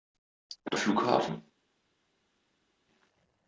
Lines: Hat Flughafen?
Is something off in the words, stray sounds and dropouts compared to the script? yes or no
no